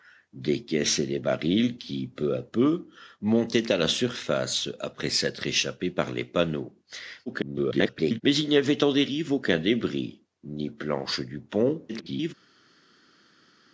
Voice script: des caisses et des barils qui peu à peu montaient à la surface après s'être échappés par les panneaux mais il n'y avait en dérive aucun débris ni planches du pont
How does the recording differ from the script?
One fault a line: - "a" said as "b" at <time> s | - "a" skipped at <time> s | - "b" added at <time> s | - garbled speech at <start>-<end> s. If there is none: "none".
- garbled speech at 7.3-8.2 s
- garbled speech at 11.9-12.3 s